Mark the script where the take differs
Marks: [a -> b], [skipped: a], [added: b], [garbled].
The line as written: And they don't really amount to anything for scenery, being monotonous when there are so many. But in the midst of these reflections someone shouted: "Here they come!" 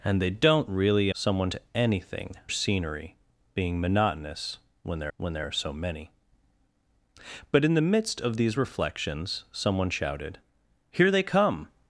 And they don't really [amount -> someone] to anything [skipped: for] scenery, being monotonous when there [added: when there] are so many. But in the midst of these reflections someone shouted: "Here they come!"